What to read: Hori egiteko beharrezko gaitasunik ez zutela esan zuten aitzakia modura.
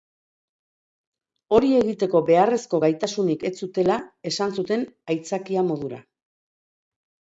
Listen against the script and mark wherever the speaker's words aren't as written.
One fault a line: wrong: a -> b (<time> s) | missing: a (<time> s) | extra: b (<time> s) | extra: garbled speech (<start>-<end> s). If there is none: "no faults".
no faults